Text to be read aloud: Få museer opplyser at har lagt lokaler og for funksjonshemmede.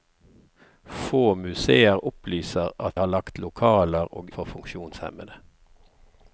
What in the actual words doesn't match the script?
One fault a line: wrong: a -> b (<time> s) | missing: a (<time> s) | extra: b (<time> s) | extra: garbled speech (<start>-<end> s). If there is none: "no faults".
no faults